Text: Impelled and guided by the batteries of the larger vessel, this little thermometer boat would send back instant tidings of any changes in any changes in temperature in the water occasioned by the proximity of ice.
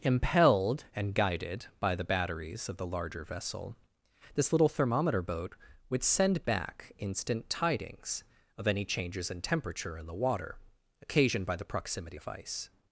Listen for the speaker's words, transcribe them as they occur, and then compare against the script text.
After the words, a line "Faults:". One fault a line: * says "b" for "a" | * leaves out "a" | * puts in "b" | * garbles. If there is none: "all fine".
Impelled and guided by the batteries of the larger vessel, this little thermometer boat would send back instant tidings of any changes in temperature in the water occasioned by the proximity of ice.
Faults:
* leaves out "any changes in"